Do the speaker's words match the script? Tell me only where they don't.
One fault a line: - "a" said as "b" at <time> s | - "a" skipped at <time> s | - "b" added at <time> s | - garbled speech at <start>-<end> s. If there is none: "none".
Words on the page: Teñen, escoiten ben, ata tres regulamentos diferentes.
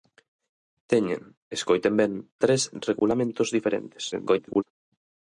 - "ata" skipped at 2.1 s
- garbled speech at 4.1-4.6 s